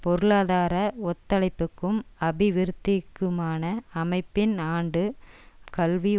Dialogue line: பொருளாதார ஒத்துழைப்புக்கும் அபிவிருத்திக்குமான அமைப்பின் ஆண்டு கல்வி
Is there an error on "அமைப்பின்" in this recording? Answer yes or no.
no